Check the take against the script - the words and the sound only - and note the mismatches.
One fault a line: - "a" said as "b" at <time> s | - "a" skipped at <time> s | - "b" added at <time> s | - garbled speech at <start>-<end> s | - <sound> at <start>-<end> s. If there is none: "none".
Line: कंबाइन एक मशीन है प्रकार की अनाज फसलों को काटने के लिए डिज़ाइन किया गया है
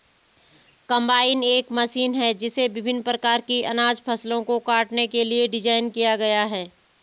- "जिसे विभिन्न" added at 2.4 s